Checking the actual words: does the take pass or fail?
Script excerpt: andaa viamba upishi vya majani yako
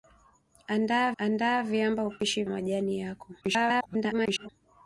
fail